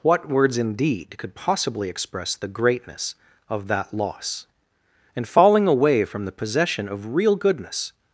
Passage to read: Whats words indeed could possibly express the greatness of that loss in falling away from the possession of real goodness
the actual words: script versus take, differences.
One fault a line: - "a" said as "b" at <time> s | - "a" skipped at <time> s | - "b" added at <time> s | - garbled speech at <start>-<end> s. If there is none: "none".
- "Whats" said as "What" at 0.0 s